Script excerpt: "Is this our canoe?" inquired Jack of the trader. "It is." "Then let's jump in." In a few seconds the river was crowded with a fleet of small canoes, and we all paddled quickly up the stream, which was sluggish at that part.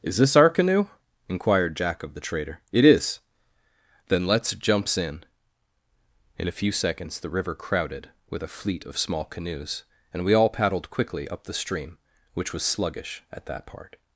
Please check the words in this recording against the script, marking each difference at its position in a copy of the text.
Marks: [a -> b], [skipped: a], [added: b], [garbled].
"Is this our canoe?" inquired Jack of the trader. "It is." "Then let's [jump -> jumps] in." In a few seconds the river [skipped: was] crowded with a fleet of small canoes, and we all paddled quickly up the stream, which was sluggish at that part.